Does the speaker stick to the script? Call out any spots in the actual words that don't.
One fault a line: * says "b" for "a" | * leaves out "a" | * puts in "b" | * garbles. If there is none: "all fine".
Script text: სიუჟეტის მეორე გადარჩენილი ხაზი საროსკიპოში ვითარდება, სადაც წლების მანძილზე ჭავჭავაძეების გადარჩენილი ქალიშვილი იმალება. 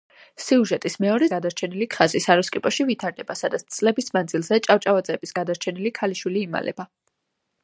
all fine